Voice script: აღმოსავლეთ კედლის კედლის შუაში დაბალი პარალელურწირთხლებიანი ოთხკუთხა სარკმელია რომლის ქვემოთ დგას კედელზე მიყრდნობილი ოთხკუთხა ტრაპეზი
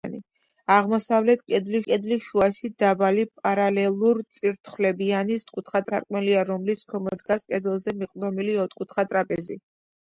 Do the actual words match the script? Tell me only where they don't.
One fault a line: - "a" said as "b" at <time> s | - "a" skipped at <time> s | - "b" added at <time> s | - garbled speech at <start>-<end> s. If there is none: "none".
none